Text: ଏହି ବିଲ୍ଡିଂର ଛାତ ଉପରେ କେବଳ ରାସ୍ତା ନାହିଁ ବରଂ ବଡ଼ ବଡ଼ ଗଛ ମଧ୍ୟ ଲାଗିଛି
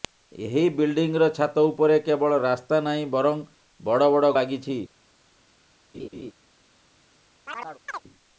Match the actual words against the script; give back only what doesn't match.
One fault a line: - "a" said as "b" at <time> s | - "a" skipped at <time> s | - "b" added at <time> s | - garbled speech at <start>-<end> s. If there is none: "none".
- "ଗଛ ମଧ୍ୟ" skipped at 4.3 s